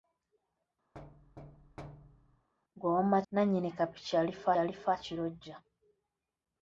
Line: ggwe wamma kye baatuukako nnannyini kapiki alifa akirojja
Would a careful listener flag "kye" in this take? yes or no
yes